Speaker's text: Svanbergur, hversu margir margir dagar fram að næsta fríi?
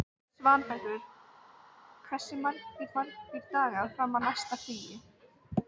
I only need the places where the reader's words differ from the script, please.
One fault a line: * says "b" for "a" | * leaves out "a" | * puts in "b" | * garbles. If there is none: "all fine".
all fine